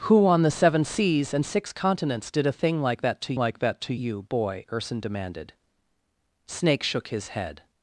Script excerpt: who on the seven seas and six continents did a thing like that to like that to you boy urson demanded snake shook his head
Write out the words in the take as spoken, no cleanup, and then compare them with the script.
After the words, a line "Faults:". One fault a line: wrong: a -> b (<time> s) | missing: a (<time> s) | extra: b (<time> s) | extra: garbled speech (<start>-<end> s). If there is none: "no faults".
who on the seven seas and six continents did a thing like that to like that to you boy urson demanded snake shook his head
Faults:
no faults